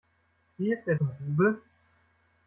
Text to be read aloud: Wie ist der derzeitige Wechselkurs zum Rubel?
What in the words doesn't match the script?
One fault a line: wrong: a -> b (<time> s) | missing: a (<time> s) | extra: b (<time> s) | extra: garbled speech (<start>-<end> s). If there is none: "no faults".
missing: derzeitige Wechselkurs (0.9 s)